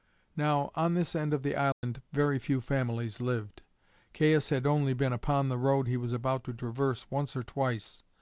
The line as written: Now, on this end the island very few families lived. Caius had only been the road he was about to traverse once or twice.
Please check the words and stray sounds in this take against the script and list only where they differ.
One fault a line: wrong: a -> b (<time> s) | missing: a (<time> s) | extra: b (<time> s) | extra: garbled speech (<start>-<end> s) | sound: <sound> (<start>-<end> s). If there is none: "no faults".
extra: of (1.3 s)
sound: dropout (1.7-1.8 s)
extra: upon (5.1 s)